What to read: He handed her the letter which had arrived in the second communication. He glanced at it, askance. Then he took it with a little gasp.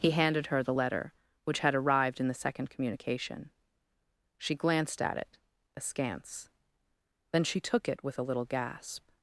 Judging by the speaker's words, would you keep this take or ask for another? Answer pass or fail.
fail